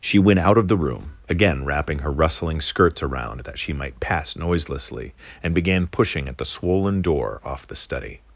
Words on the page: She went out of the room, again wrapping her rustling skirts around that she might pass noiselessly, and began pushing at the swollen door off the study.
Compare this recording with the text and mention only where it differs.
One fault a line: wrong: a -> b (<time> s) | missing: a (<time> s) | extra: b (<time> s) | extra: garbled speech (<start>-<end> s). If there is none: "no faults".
no faults